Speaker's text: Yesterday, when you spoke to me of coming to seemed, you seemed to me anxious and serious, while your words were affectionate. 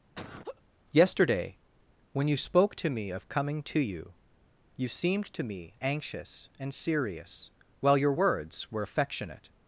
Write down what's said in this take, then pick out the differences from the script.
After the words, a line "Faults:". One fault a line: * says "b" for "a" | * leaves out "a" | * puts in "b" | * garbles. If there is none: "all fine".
Yesterday, when you spoke to me of coming to you, you seemed to me anxious and serious, while your words were affectionate.
Faults:
* says "you" for "seemed"